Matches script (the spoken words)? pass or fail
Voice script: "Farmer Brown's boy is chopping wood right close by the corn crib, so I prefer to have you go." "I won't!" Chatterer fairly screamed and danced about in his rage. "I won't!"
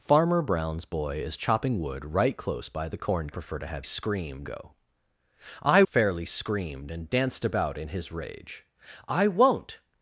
fail